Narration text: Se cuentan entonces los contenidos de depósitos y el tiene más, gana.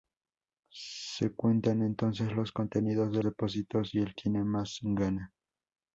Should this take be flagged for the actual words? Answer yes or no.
no